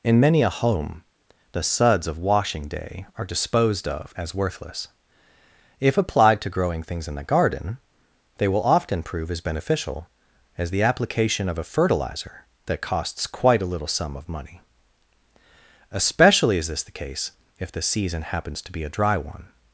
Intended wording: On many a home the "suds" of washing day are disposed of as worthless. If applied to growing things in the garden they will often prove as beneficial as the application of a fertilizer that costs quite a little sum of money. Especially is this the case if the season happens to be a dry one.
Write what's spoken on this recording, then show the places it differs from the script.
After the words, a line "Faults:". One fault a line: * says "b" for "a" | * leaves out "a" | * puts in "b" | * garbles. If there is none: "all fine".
In many a home the "suds" of washing day are disposed of as worthless. If applied to growing things in the garden they will often prove as beneficial as the application of a fertilizer that costs quite a little sum of money. Especially is this the case if the season happens to be a dry one.
Faults:
* says "In" for "On"